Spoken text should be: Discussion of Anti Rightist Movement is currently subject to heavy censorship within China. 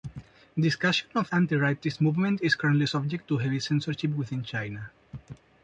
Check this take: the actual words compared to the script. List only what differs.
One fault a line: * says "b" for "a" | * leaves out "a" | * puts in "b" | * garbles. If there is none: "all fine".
all fine